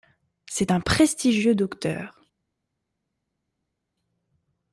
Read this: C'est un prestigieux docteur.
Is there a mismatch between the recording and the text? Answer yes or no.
no